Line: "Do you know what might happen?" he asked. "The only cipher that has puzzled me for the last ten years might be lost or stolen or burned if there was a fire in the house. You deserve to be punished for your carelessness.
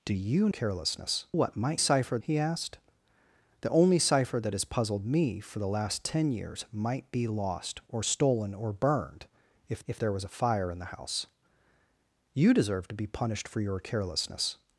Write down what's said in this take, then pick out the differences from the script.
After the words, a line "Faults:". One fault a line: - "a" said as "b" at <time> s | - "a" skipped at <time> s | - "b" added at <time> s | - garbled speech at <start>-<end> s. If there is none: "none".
"Do you carelessness what might cipher?" he asked. "The only cipher that has puzzled me for the last ten years might be lost or stolen or burned if if there was a fire in the house. You deserve to be punished for your carelessness.
Faults:
- "know" said as "carelessness" at 0.5 s
- "happen" said as "cipher" at 1.8 s
- "if" added at 9.9 s